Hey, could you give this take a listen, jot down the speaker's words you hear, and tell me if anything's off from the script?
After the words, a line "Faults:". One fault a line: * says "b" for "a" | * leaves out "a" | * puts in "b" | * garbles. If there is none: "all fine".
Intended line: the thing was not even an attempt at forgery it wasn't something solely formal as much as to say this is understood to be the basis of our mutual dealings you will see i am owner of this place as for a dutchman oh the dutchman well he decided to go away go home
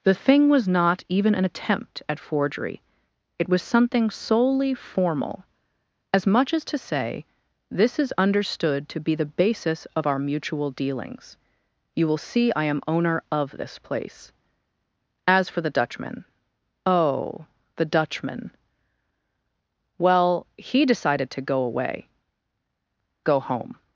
the thing was not even an attempt at forgery it was something solely formal as much as to say this is understood to be the basis of our mutual dealings you will see i am owner of this place as for the dutchman oh the dutchman well he decided to go away go home
Faults:
* says "was" for "wasn't"
* says "the" for "a"